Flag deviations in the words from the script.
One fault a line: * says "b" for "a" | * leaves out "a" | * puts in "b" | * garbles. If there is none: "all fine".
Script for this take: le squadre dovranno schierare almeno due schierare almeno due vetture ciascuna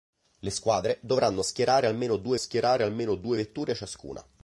all fine